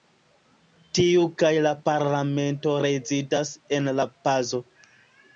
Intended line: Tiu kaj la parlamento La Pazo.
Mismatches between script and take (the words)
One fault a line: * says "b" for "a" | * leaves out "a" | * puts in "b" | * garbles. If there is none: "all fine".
* puts in "rezidas en"